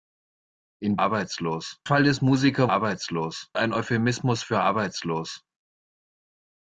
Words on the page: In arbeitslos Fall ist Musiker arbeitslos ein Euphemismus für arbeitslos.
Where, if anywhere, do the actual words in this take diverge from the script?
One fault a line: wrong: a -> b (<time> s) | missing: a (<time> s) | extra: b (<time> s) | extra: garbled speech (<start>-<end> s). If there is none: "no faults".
no faults